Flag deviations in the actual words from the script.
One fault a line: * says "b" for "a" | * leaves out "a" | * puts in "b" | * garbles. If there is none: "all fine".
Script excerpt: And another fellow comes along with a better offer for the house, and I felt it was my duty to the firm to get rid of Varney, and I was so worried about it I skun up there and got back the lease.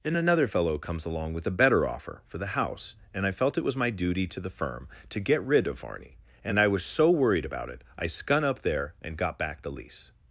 all fine